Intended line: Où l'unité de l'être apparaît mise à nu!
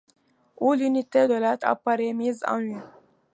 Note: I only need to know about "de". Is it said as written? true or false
true